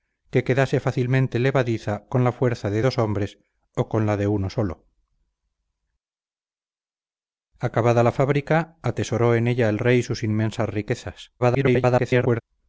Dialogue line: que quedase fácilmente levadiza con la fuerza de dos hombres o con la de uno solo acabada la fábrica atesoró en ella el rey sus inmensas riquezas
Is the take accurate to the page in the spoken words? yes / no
no